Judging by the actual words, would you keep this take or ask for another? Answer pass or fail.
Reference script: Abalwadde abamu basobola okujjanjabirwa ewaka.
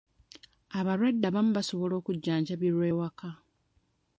pass